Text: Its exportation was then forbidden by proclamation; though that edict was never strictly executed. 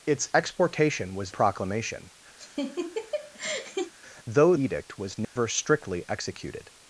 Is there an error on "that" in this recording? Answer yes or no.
yes